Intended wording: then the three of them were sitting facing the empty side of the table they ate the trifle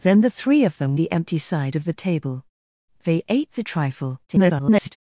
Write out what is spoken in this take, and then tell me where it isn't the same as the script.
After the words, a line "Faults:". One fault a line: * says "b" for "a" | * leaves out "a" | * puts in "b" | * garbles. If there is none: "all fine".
then the three of them the empty side of the table they ate the trifle [garbled]
Faults:
* leaves out "were sitting facing"
* garbles